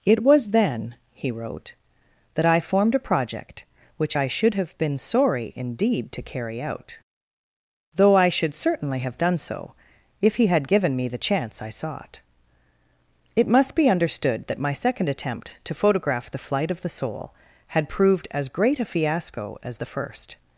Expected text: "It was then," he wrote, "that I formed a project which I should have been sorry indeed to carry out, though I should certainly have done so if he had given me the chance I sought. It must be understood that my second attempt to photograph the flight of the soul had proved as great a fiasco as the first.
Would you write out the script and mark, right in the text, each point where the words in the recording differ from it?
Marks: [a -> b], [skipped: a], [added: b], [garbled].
"It was then," he wrote, "that I formed a project which I should have been sorry indeed to carry out, though I should certainly have done so if he had given me the chance I sought. It must be understood that my second attempt to photograph the flight of the soul had proved as great a fiasco as the first.